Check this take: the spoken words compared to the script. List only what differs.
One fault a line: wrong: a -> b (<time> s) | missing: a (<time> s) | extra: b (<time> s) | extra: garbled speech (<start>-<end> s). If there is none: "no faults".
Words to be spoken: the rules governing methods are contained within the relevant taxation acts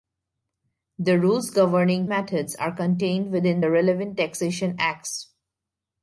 no faults